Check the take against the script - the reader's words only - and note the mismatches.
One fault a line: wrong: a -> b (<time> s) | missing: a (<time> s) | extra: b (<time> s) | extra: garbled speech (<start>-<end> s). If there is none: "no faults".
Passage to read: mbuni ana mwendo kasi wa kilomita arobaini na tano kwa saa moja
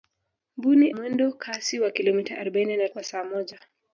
missing: ana (0.9 s)
missing: tano (2.9 s)